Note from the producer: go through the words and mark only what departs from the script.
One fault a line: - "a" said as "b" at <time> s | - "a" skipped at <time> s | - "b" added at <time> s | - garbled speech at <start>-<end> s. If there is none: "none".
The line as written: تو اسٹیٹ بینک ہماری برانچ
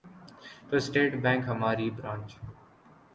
none